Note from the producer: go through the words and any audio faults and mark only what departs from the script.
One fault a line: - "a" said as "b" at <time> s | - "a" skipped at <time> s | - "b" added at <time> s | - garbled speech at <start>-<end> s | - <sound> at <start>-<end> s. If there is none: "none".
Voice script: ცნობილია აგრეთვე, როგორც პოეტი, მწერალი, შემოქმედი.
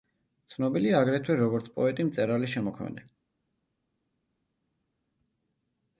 none